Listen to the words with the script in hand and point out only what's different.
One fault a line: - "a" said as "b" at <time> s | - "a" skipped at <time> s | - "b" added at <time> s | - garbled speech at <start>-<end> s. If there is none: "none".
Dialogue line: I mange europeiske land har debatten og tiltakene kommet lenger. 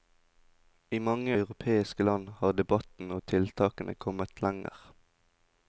none